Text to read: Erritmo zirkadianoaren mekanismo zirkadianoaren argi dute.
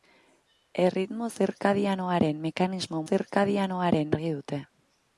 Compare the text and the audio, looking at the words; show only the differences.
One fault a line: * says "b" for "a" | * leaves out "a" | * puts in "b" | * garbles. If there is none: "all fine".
all fine